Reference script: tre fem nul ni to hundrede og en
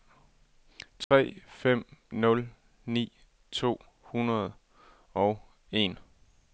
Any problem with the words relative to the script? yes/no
no